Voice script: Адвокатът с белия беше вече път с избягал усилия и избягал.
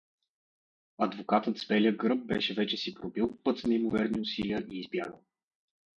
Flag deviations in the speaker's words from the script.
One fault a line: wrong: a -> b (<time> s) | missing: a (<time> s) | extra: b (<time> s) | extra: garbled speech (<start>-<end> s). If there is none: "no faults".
extra: гръб (2.0 s)
extra: си пробил (2.8 s)
wrong: избягал -> неимоверни (3.7 s)